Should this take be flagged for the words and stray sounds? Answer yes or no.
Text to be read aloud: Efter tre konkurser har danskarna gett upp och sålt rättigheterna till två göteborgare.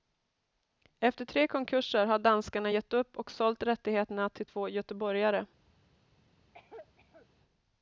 yes